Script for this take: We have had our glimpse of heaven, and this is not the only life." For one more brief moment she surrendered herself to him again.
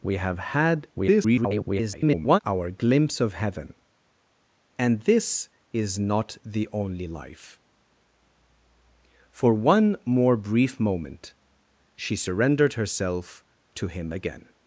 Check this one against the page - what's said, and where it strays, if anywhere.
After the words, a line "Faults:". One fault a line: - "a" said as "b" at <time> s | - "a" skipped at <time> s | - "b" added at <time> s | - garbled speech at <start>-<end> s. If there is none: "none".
We have had [garbled] our glimpse of heaven, and this is not the only life." For one more brief moment she surrendered herself to him again.
Faults:
- garbled speech at 0.9-2.4 s